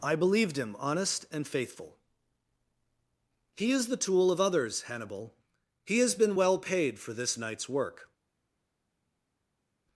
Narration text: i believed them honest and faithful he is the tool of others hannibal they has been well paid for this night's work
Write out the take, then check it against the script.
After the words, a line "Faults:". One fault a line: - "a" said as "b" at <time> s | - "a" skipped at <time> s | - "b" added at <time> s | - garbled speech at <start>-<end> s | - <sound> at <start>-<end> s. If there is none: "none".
i believed him honest and faithful he is the tool of others hannibal he has been well paid for this night's work
Faults:
- "them" said as "him" at 0.6 s
- "they" said as "he" at 5.8 s